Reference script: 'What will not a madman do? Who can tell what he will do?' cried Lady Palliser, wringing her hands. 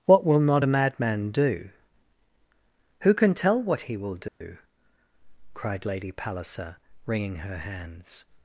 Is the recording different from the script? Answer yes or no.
no